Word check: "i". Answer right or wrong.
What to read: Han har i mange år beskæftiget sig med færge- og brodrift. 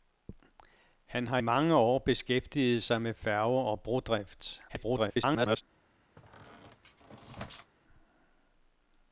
wrong